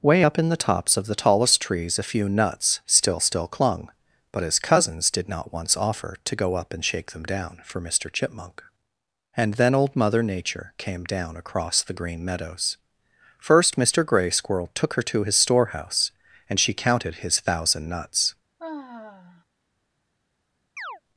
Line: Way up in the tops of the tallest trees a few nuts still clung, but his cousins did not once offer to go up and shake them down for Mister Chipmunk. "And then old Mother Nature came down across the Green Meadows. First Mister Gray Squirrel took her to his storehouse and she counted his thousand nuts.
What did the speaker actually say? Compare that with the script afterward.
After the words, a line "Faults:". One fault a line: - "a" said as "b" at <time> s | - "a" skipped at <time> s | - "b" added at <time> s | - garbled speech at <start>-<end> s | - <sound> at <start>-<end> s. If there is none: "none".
Way up in the tops of the tallest trees a few nuts still still clung, but his cousins did not once offer to go up and shake them down for Mister Chipmunk. "And then old Mother Nature came down across the Green Meadows. First Mister Gray Squirrel took her to his storehouse and she counted his thousand nuts.
Faults:
- "still" added at 3.2 s
- sigh at 18.6-19.4 s
- chirp at 20.8-21.0 s